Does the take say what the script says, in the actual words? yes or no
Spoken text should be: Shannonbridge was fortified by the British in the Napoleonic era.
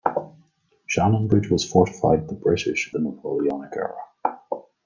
no